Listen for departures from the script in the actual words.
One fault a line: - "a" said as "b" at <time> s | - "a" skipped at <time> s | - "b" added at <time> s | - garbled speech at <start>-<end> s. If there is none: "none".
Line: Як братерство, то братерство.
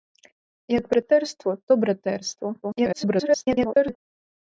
- garbled speech at 2.6-4.0 s